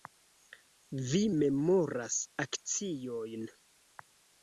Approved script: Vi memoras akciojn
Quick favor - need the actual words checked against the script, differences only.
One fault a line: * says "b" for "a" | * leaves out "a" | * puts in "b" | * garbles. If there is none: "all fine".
all fine